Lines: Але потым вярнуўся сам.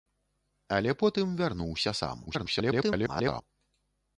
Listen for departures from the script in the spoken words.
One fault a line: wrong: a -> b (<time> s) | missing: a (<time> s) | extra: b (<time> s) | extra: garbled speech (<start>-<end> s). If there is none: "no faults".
extra: garbled speech (2.3-3.4 s)